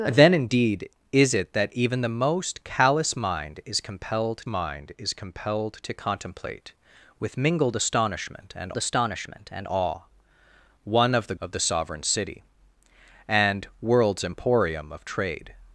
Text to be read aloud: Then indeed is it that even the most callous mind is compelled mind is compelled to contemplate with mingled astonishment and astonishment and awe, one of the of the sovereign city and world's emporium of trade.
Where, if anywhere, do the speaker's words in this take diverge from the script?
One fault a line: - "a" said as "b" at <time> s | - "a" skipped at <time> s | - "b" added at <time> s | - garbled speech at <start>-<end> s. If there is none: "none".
none